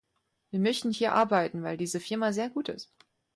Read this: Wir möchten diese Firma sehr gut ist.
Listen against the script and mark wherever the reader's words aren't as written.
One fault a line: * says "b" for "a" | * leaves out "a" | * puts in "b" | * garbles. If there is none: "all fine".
* puts in "hier arbeiten weil"